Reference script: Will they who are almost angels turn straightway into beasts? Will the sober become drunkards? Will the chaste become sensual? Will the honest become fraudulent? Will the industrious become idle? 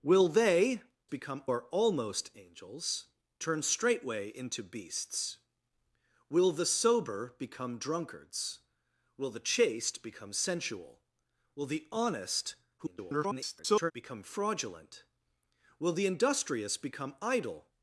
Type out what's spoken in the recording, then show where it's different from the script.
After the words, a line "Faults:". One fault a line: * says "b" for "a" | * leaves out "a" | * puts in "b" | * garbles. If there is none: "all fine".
Will they become are almost angels turn straightway into beasts? Will the sober become drunkards? Will the chaste become sensual? Will the honest [garbled] become fraudulent? Will the industrious become idle?
Faults:
* says "become" for "who"
* garbles